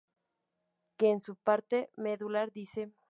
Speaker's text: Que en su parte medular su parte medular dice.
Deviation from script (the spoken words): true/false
true